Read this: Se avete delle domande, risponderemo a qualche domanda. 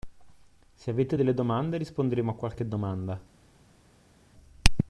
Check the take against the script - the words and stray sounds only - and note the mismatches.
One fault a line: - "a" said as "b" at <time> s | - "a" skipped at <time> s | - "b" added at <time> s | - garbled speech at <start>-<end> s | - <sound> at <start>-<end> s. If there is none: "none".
none